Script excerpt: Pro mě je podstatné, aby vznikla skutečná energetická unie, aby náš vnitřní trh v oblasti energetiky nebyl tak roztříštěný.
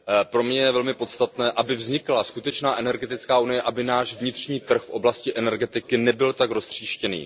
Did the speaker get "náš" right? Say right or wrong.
right